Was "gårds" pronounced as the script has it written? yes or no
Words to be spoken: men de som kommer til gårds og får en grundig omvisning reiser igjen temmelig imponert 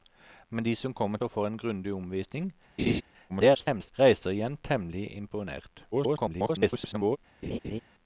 no